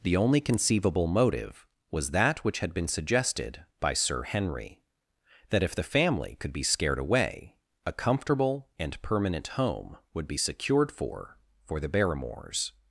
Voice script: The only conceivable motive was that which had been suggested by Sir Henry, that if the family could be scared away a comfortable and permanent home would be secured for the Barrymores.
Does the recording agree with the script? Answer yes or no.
no